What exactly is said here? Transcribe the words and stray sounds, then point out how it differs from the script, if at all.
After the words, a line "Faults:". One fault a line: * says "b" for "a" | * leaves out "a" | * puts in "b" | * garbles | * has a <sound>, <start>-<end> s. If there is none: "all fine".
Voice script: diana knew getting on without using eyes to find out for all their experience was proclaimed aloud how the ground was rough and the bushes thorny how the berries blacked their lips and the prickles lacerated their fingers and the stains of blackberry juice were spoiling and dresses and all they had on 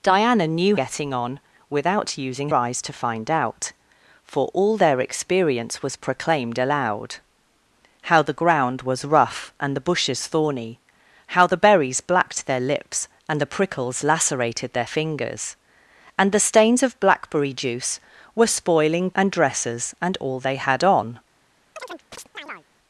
diana knew getting on without using eyes to find out for all their experience was proclaimed aloud how the ground was rough and the bushes thorny how the berries blacked their lips and the prickles lacerated their fingers and the stains of blackberry juice were spoiling and dresses and all they had on
Faults:
* has a chirp, 21.8-22.7 s